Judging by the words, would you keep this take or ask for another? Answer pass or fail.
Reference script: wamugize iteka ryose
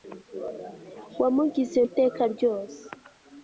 pass